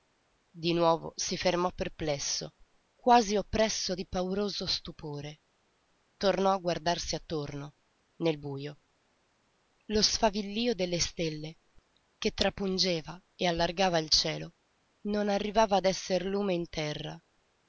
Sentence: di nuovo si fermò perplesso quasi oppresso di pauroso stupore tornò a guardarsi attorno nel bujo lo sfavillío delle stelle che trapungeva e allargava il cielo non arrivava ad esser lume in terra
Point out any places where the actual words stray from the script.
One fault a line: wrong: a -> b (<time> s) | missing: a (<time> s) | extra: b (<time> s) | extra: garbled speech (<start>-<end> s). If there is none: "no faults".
no faults